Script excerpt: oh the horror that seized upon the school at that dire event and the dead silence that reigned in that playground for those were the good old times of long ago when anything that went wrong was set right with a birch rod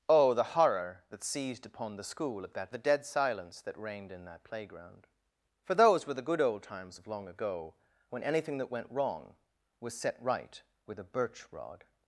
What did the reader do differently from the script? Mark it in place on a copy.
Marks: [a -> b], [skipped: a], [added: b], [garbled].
oh the horror that seized upon the school at that [skipped: dire event and] the dead silence that reigned in that playground for those were the good old times of long ago when anything that went wrong was set right with a birch rod